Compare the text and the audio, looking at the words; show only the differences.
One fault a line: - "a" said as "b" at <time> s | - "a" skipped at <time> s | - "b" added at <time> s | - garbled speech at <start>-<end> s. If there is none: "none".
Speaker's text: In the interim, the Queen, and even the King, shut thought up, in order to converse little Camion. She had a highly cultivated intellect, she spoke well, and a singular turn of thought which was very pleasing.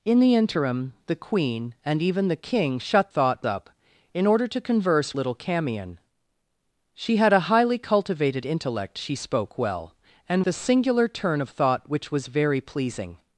none